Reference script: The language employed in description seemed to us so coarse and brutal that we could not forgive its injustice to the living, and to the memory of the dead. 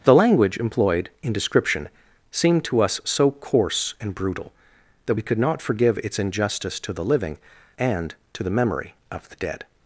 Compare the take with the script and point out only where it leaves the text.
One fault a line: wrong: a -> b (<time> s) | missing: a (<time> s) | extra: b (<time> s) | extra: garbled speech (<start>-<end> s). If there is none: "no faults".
no faults